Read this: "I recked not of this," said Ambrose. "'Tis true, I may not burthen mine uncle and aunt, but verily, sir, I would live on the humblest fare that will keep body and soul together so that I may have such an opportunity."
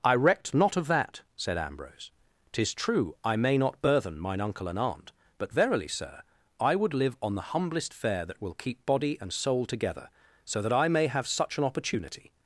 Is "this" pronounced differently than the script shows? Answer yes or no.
yes